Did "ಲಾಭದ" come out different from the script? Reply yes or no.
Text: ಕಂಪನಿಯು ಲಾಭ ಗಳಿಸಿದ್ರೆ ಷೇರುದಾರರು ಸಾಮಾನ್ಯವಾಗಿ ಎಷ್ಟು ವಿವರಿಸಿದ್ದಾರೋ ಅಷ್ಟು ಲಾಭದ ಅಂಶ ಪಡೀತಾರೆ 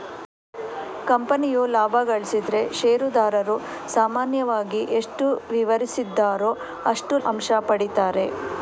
yes